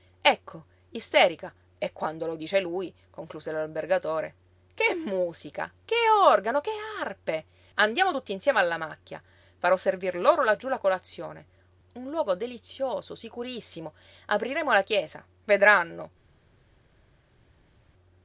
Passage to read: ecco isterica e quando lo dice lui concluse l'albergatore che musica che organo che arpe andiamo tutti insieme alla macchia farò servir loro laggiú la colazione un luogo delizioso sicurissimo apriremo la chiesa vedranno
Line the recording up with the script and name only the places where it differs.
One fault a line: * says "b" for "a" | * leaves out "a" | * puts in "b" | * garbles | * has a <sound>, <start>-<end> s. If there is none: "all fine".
all fine